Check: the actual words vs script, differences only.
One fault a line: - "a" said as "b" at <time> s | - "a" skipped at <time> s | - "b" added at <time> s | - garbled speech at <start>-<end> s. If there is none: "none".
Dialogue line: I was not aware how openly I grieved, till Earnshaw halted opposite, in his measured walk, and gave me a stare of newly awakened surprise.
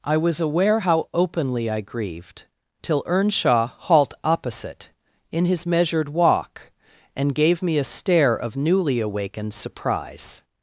- "not" skipped at 0.4 s
- "halted" said as "halt" at 3.8 s